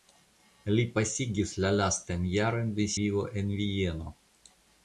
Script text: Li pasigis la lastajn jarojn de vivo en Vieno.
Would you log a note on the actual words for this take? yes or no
no